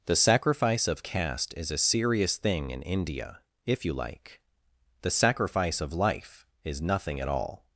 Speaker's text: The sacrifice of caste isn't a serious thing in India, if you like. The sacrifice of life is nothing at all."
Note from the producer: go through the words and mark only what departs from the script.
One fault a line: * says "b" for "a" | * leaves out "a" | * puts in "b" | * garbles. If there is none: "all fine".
* says "is" for "isn't"